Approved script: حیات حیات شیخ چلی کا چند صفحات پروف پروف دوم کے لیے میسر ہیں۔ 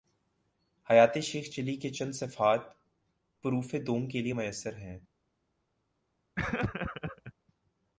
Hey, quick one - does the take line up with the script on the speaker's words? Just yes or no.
no